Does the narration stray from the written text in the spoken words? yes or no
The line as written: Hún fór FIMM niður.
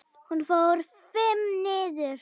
no